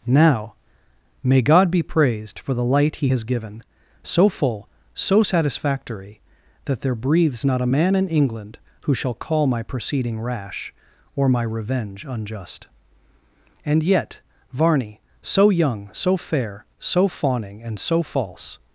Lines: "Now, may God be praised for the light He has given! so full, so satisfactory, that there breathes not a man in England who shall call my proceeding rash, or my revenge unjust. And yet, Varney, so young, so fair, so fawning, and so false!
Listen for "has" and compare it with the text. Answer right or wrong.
right